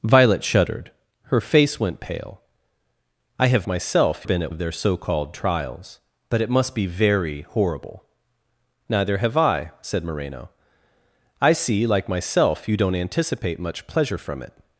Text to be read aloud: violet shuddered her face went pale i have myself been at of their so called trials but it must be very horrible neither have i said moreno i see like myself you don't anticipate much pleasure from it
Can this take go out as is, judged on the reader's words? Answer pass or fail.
pass